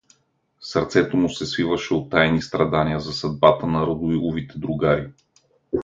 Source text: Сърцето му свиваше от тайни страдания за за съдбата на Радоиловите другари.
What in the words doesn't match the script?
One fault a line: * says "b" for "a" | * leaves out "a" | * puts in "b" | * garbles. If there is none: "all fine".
* puts in "се"
* leaves out "за"